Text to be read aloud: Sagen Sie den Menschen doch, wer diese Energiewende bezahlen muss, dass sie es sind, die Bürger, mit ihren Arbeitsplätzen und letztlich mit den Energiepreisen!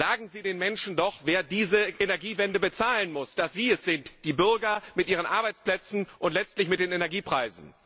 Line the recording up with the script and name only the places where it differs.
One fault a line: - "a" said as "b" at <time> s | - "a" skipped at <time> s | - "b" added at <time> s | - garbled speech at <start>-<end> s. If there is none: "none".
none